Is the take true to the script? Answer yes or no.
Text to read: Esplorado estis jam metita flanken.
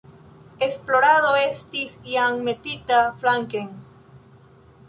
yes